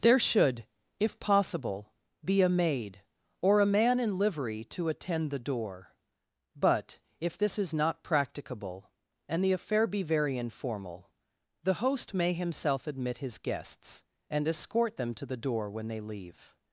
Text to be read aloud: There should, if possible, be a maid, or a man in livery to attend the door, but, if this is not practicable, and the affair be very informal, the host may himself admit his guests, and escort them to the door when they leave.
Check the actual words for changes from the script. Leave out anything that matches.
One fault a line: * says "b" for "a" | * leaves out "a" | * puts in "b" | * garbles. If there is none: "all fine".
all fine